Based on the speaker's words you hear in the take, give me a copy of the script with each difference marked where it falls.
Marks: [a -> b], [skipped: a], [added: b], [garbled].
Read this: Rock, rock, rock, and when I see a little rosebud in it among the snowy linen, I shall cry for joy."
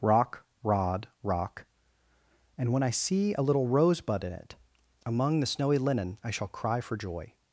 Rock, [rock, -> rod] rock, and when I see a little rosebud in it among the snowy linen, I shall cry for joy."